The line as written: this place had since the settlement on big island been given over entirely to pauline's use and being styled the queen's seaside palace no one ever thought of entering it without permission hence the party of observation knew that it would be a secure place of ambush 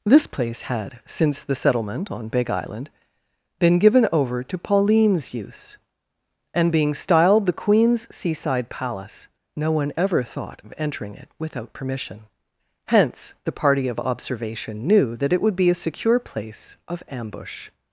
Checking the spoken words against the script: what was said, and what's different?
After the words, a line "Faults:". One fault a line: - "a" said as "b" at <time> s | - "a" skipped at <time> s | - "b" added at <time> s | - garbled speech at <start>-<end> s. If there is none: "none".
this place had since the settlement on big island been given over to pauline's use and being styled the queen's seaside palace no one ever thought of entering it without permission hence the party of observation knew that it would be a secure place of ambush
Faults:
- "entirely" skipped at 4.4 s